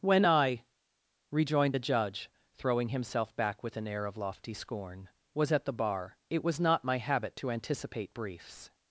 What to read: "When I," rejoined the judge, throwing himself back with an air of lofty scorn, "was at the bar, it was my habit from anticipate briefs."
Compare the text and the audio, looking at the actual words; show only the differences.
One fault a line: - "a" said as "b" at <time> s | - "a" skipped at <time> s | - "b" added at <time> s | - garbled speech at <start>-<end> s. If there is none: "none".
- "not" added at 6.6 s
- "from" said as "to" at 7.4 s